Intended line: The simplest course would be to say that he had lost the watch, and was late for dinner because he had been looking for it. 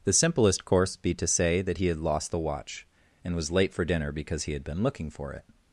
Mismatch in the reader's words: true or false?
true